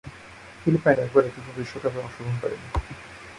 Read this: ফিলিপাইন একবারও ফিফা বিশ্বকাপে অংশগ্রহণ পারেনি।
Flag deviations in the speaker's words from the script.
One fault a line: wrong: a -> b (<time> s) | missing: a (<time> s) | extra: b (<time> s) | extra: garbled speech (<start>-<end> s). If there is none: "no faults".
no faults